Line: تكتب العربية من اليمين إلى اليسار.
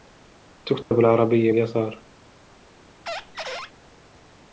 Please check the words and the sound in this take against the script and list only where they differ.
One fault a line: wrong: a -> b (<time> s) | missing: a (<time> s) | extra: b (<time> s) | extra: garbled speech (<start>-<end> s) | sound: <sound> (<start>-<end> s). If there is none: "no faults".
sound: dropout (0.8-0.9 s)
missing: من اليمين إلى (1.5 s)
sound: squeak (3.1-3.7 s)